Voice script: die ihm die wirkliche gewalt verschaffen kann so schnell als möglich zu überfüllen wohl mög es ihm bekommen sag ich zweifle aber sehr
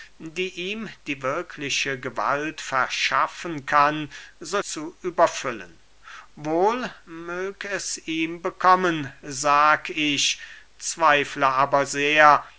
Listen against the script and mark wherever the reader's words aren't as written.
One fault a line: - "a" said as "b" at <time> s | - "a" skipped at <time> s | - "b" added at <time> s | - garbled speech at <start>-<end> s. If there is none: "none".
- "schnell als möglich" skipped at 4.6 s